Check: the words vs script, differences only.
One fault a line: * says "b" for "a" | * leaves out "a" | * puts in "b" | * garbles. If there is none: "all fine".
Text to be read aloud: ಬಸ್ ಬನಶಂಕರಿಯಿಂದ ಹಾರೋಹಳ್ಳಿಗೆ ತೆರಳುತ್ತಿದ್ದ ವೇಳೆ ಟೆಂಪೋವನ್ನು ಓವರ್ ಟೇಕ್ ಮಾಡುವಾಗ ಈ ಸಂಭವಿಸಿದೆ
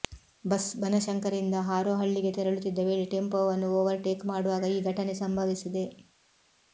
* puts in "ಘಟನೆ"